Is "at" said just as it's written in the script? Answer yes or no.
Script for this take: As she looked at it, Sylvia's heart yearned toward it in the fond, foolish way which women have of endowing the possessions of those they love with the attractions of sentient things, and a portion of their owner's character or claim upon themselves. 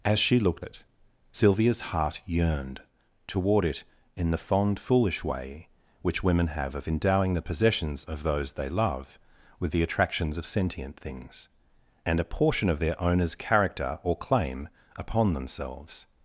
no